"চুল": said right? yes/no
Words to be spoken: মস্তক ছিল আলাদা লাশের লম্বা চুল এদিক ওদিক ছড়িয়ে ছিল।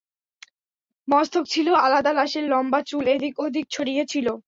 yes